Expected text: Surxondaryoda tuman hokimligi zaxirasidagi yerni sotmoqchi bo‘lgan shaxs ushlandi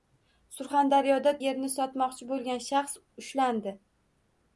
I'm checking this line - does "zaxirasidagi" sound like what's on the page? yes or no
no